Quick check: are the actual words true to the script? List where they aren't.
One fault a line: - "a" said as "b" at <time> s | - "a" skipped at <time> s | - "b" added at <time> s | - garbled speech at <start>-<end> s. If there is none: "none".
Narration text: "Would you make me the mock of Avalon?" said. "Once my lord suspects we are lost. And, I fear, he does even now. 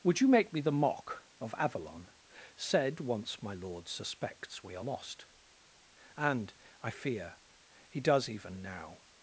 none